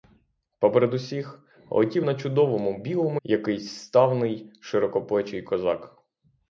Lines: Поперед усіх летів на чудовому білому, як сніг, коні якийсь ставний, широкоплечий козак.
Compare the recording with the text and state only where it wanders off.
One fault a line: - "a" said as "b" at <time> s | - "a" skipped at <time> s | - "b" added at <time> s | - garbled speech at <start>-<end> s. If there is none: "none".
- "як сніг коні" skipped at 3.2 s